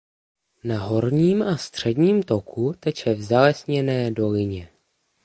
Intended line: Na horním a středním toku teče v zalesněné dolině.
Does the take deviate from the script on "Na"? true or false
false